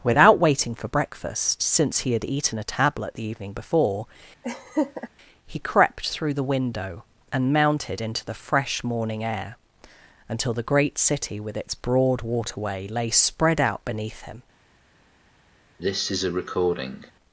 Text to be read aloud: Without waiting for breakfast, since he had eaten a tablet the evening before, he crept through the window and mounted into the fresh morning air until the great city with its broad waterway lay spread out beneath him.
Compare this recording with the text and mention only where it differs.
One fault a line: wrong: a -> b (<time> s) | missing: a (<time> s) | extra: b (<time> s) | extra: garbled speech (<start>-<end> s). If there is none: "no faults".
no faults